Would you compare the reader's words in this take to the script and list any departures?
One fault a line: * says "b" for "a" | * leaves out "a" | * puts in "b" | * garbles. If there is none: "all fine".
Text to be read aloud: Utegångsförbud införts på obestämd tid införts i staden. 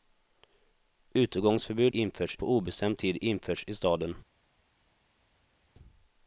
all fine